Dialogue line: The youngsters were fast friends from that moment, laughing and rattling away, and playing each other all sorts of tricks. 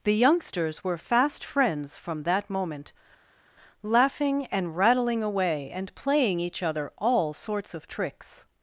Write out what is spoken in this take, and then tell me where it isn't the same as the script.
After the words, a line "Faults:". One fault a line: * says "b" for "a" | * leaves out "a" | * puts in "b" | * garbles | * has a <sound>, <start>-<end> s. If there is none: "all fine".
The youngsters were fast friends from that moment, laughing and rattling away, and playing each other all sorts of tricks.
Faults:
all fine